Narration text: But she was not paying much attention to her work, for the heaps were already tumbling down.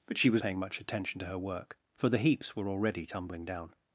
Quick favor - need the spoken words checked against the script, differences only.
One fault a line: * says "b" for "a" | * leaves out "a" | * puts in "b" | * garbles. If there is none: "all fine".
* leaves out "not"